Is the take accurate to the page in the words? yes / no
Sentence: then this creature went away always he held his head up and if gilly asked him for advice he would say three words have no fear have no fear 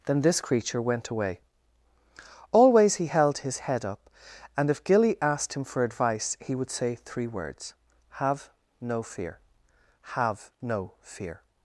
yes